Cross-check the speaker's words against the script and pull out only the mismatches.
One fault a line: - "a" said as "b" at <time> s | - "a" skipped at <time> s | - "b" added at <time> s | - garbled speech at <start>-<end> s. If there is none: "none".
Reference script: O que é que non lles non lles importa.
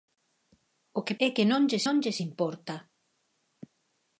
none